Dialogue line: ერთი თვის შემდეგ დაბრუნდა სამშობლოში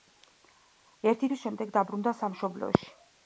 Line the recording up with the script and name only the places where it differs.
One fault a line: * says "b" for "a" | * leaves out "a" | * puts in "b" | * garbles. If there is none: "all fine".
all fine